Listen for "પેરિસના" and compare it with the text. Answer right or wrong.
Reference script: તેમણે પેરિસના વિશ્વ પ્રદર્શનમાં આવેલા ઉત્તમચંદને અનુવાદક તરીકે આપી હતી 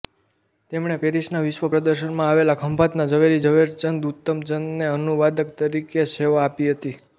right